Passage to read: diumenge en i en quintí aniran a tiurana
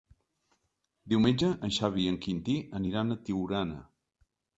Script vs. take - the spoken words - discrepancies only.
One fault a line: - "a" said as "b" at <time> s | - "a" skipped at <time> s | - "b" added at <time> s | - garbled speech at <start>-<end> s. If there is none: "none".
- "xavi" added at 1.8 s